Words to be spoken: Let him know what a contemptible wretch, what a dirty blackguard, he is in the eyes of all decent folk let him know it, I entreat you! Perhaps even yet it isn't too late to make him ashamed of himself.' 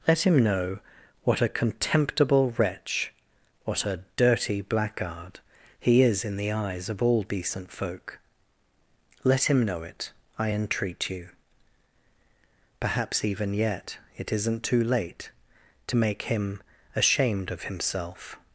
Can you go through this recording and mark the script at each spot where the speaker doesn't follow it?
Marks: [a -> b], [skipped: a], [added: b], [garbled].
Let him know what a contemptible wretch, what a dirty blackguard, he is in the eyes of all decent folk let him know it, I entreat you! Perhaps even yet it isn't too late to make him ashamed of himself.'